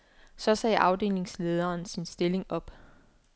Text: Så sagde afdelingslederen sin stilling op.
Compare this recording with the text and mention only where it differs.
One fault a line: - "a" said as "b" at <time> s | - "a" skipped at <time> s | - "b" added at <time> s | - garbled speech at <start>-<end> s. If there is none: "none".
none